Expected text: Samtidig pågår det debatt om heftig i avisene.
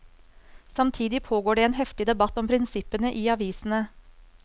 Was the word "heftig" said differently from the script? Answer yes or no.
yes